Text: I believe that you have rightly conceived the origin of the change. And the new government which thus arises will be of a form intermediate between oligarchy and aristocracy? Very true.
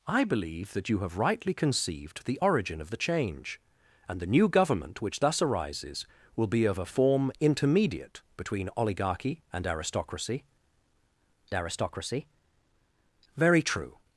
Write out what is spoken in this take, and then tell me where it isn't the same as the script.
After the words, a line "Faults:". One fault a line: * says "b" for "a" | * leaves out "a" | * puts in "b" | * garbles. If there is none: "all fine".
I believe that you have rightly conceived the origin of the change. And the new government which thus arises will be of a form intermediate between oligarchy and aristocracy aristocracy? Very true.
Faults:
* puts in "aristocracy"